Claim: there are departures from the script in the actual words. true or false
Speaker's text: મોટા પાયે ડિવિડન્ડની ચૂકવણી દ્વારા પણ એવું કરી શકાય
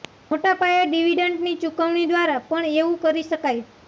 false